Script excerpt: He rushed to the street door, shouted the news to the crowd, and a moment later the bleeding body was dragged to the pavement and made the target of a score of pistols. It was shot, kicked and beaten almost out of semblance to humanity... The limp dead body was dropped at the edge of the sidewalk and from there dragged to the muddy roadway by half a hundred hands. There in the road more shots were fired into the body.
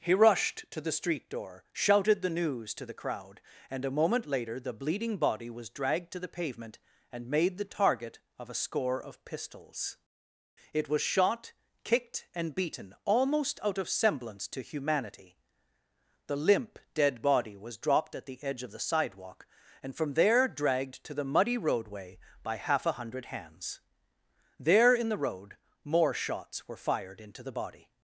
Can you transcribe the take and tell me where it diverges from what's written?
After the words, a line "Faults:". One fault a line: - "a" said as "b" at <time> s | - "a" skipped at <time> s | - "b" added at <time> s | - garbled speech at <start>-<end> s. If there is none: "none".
He rushed to the street door, shouted the news to the crowd, and a moment later the bleeding body was dragged to the pavement and made the target of a score of pistols. It was shot, kicked and beaten almost out of semblance to humanity... The limp dead body was dropped at the edge of the sidewalk and from there dragged to the muddy roadway by half a hundred hands. There in the road more shots were fired into the body.
Faults:
none